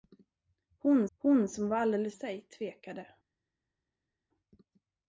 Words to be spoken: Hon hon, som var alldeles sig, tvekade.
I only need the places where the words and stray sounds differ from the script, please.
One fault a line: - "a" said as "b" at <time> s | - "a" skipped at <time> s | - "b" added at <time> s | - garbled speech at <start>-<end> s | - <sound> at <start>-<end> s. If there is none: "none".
none